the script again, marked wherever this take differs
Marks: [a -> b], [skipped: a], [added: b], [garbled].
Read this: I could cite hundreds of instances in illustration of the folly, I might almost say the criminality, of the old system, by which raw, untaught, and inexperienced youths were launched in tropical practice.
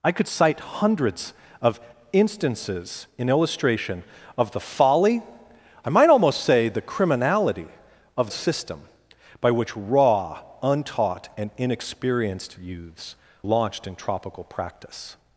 I could cite hundreds of instances in illustration of the folly, I might almost say the criminality, of [skipped: the old] system, by which raw, untaught, and inexperienced youths [skipped: were] launched in tropical practice.